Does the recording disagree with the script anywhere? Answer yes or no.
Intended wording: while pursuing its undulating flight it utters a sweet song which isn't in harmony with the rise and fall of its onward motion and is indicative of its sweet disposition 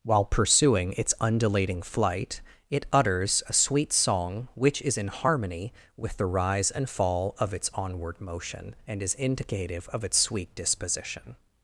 yes